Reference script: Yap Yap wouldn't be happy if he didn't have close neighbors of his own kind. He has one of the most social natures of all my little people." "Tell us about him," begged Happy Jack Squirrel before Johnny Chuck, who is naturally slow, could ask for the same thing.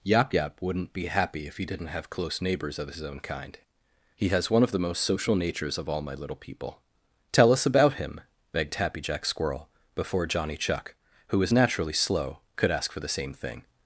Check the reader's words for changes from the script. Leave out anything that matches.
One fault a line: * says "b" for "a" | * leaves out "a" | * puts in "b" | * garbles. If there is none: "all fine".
* says "was" for "is"